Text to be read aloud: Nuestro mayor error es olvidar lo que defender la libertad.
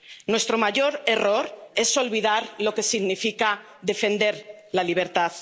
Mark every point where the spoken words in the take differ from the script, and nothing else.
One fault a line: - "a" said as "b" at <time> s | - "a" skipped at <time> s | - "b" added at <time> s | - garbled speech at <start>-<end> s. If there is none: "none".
- "significa" added at 2.8 s